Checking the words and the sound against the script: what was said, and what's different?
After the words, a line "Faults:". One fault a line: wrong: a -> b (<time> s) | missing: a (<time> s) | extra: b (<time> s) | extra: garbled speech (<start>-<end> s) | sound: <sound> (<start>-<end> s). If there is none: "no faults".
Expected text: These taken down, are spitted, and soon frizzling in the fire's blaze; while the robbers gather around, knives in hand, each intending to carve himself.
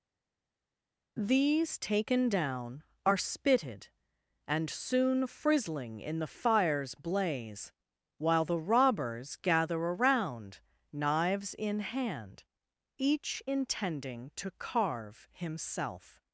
These taken down, are spitted, and soon frizzling in the fire's blaze; while the robbers gather around, knives in hand, each intending to carve himself.
Faults:
no faults